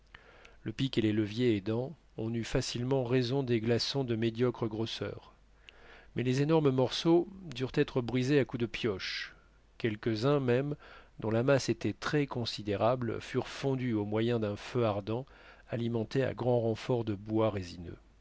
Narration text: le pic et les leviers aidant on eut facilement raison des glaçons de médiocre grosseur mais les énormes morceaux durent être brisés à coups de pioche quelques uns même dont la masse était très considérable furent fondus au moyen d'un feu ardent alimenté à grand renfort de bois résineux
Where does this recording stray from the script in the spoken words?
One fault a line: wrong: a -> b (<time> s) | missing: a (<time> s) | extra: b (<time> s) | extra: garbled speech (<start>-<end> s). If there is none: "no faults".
no faults